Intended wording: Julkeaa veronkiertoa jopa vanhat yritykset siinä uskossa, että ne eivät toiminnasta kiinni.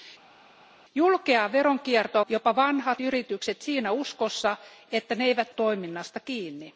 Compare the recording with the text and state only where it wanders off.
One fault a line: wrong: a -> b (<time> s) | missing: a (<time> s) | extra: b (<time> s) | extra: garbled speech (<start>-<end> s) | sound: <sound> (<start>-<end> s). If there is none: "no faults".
no faults